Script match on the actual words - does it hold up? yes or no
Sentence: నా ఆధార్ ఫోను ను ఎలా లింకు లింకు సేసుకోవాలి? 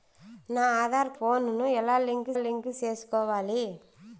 yes